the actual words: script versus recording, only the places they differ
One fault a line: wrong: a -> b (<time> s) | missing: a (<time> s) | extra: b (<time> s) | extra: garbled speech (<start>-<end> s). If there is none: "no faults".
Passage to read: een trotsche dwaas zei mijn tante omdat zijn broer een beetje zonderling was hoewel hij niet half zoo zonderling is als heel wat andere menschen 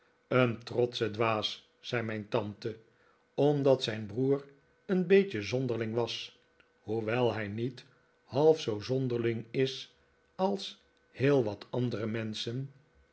no faults